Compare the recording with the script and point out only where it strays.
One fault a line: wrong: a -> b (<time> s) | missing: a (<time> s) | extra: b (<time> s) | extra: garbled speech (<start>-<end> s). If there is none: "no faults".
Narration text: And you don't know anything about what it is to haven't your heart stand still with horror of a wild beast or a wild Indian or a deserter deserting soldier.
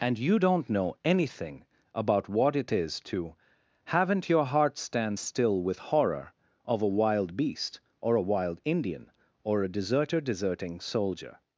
no faults